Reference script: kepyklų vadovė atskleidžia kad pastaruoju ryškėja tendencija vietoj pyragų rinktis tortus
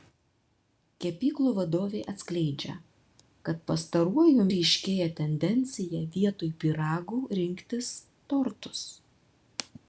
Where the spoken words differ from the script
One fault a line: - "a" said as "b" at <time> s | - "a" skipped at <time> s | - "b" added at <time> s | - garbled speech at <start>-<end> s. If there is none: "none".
none